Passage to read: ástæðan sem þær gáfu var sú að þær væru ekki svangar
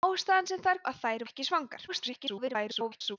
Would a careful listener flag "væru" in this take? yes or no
yes